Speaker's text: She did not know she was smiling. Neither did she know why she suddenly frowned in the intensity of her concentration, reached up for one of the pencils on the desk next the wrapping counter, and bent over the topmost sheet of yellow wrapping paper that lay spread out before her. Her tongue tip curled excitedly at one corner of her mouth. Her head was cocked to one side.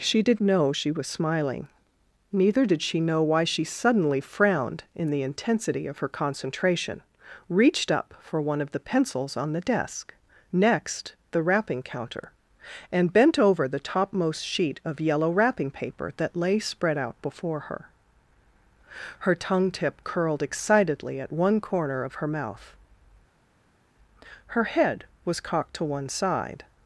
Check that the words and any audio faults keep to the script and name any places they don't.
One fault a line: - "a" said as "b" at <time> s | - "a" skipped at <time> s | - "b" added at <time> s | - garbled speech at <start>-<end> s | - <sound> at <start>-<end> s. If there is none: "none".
- "not" skipped at 0.4 s